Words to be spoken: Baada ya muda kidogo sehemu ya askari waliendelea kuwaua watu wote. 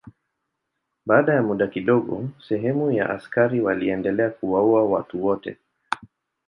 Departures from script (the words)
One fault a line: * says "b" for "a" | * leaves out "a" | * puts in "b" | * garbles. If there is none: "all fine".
all fine